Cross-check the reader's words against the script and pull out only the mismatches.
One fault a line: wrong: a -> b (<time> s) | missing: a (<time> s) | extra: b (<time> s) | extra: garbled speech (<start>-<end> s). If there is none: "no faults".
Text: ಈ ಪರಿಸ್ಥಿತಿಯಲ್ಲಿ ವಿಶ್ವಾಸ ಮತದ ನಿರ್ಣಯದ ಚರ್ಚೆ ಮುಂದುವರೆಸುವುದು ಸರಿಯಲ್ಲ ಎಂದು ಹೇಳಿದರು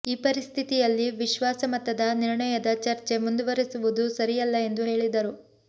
no faults